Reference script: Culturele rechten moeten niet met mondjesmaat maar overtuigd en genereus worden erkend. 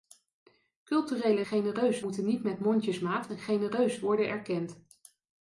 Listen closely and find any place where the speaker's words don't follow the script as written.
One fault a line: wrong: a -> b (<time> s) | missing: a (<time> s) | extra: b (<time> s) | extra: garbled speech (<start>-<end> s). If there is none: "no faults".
wrong: rechten -> genereus (1.4 s)
missing: maar overtuigd (3.3 s)